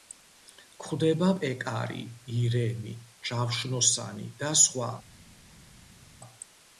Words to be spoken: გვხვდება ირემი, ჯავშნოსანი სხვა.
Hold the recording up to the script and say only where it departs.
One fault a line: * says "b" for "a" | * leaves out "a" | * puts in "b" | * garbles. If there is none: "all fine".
* puts in "პეკარი"
* puts in "და"